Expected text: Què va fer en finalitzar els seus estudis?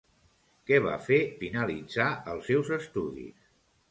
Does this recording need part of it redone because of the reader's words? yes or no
yes